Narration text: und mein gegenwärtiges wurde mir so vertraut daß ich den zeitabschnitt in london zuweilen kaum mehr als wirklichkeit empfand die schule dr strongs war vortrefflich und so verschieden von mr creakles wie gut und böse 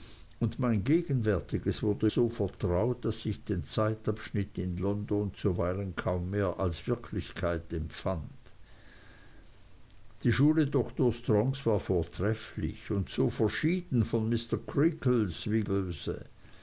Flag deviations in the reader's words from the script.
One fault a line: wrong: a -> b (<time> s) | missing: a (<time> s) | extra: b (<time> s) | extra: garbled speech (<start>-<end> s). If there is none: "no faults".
missing: mir (2.1 s)
missing: gut und (15.6 s)